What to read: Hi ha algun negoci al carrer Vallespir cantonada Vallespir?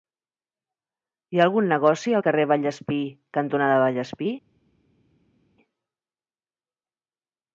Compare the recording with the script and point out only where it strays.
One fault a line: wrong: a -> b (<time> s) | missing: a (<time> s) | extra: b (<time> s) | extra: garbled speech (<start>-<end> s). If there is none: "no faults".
no faults